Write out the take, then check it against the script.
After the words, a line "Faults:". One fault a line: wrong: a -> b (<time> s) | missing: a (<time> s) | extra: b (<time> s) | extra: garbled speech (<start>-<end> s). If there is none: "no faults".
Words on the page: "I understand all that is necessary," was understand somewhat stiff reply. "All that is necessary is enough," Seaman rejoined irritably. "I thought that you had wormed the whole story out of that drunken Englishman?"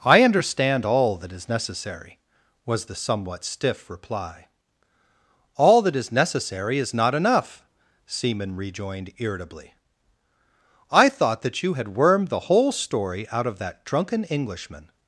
"I understand all that is necessary," was the somewhat stiff reply. "All that is necessary is not enough," Seaman rejoined irritably. "I thought that you had wormed the whole story out of that drunken Englishman?"
Faults:
wrong: understand -> the (2.8 s)
extra: not (6.9 s)